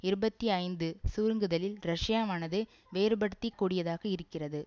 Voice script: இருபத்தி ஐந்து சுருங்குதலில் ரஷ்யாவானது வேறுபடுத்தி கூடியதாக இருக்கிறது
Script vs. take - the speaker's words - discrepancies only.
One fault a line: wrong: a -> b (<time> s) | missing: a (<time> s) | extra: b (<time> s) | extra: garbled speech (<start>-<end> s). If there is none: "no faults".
no faults